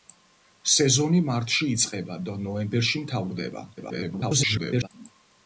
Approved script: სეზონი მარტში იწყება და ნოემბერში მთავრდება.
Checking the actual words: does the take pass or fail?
fail